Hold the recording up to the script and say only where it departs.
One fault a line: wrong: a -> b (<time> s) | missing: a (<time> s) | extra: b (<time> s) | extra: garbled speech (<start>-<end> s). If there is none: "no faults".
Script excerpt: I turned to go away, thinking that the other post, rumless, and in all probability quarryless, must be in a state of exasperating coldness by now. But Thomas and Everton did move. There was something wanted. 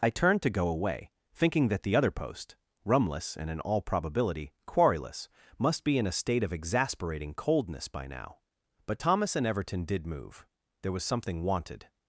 no faults